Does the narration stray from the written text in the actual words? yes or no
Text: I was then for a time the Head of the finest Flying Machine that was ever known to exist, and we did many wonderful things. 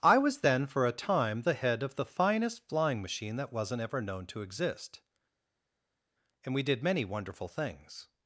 yes